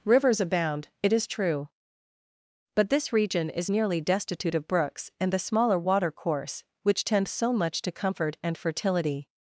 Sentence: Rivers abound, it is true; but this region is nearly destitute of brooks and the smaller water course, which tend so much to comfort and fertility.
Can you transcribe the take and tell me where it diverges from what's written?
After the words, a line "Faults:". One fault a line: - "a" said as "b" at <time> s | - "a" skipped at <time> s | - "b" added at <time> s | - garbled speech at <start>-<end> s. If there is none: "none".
Rivers abound, it is true; but this region is nearly destitute of brooks and the smaller water course, which tend so much to comfort and fertility.
Faults:
none